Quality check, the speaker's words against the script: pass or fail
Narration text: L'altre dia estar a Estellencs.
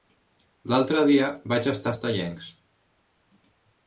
fail